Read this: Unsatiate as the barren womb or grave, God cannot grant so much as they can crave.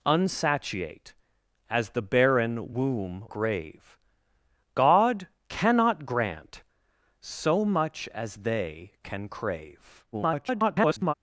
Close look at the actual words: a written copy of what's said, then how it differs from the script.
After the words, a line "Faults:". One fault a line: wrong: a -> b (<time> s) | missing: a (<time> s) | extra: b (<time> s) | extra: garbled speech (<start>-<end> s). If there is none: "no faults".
Unsatiate as the barren womb grave, God cannot grant so much as they can crave. [garbled]
Faults:
missing: or (3.3 s)
extra: garbled speech (10.1-11.1 s)